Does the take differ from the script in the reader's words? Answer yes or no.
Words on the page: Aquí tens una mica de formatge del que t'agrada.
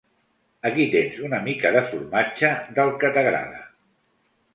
no